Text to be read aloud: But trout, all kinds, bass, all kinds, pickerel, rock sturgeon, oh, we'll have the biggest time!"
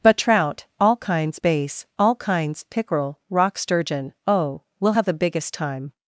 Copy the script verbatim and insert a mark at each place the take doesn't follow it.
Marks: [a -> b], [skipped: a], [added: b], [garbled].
But trout, all kinds, bass, all kinds, pickerel, rock sturgeon, oh, we'll have the biggest time!"